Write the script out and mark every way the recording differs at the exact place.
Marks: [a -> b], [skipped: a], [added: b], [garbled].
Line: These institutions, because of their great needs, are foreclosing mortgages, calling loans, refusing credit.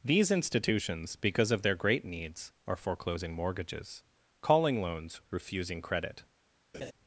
These institutions, because of their great needs, are foreclosing mortgages, calling loans, refusing credit.